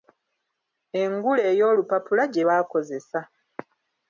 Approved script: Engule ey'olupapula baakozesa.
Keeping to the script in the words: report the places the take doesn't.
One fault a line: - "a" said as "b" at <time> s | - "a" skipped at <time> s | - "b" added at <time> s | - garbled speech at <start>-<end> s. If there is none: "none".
- "gye" added at 2.3 s